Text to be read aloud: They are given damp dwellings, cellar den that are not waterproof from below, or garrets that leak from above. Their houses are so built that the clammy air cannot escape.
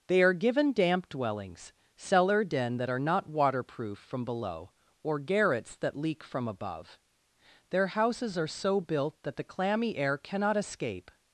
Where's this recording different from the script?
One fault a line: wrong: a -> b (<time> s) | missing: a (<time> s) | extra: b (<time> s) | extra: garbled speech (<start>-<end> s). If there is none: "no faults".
no faults